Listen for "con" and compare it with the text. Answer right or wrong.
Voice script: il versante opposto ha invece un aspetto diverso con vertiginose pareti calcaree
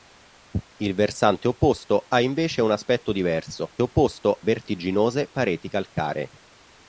wrong